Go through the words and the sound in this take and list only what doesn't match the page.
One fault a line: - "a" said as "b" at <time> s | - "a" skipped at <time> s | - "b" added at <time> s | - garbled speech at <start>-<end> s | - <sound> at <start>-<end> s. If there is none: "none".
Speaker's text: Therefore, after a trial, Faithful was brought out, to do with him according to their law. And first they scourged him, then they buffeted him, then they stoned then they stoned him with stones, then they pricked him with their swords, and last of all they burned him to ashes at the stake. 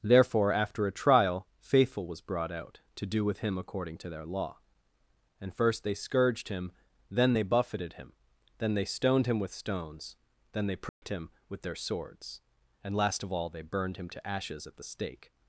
- "then they stoned" skipped at 9.3 s
- dropout at 10.9-11.0 s